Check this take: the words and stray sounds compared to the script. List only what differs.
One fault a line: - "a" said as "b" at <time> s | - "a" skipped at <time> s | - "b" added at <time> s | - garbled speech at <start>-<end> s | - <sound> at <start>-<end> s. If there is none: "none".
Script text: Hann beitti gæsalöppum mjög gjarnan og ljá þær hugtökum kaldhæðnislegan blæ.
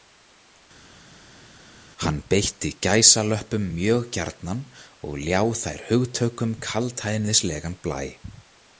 none